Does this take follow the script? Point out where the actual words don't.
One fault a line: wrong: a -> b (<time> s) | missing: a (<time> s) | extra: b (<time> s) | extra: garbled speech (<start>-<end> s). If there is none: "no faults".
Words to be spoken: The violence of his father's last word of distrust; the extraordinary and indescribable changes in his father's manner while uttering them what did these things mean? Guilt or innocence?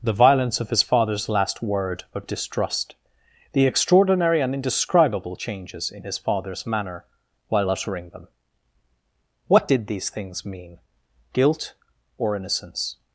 no faults